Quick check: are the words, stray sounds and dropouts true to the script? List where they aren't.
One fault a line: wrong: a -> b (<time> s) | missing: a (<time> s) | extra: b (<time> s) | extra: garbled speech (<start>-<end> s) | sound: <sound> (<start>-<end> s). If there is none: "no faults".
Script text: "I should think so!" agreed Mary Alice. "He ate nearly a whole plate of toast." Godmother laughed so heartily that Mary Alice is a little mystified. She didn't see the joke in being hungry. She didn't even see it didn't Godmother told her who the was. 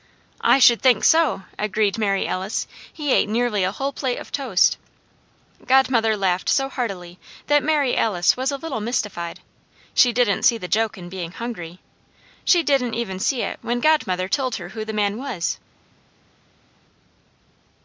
wrong: is -> was (8.4 s)
wrong: didn't -> when (13.6 s)
extra: man (14.9 s)